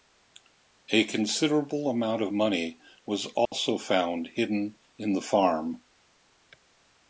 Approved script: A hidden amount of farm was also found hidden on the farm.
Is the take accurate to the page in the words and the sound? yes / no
no